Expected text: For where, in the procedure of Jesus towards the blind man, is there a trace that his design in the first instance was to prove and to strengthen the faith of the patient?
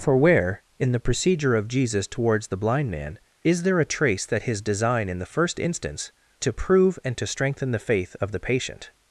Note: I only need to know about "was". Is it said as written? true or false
false